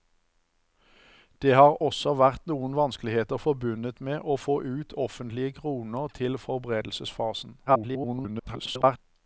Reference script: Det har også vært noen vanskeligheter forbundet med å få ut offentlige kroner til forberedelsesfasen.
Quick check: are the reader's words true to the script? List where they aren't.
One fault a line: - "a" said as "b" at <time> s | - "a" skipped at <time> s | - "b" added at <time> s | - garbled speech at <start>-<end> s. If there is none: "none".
- garbled speech at 7.7-9.0 s